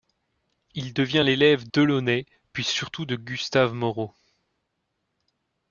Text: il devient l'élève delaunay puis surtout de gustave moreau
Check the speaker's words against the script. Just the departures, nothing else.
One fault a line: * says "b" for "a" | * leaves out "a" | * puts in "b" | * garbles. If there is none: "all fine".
all fine